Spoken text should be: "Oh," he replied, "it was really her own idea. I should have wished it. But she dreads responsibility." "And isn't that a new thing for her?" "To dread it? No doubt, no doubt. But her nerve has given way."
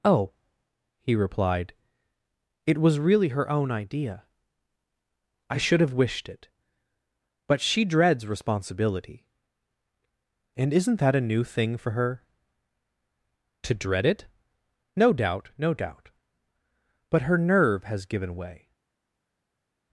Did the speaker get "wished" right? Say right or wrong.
right